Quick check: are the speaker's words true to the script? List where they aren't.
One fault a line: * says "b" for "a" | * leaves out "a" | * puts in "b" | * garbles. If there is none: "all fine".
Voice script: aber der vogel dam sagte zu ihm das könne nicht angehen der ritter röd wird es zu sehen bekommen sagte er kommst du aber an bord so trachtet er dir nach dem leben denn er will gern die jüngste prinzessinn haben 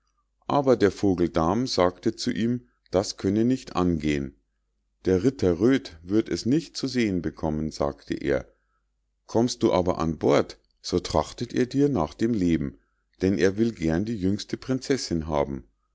* puts in "nicht"